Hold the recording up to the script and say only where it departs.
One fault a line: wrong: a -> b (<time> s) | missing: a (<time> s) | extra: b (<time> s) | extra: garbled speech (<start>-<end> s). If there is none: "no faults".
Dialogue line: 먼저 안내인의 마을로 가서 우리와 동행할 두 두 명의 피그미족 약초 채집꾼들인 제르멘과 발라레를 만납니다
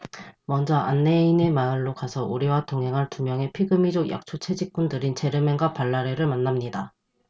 missing: 두 (3.2 s)